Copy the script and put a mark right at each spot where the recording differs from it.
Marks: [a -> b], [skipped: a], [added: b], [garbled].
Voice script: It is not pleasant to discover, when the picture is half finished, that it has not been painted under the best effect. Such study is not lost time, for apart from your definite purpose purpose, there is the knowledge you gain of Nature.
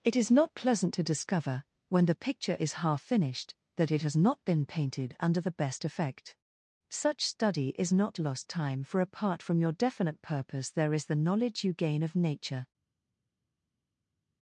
It is not pleasant to discover, when the picture is half finished, that it has not been painted under the best effect. Such study is not lost time, for apart from your definite purpose [skipped: purpose,] there is the knowledge you gain of Nature.